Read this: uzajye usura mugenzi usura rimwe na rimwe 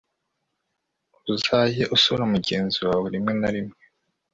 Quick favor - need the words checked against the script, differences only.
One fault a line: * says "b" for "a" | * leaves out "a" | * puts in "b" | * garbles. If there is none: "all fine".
* says "wawe" for "usura"